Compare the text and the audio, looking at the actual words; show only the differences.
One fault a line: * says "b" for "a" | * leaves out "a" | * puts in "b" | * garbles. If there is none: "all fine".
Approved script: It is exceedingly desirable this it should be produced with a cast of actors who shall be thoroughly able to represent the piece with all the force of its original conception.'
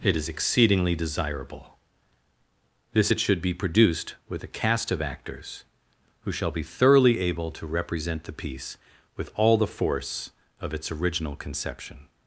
all fine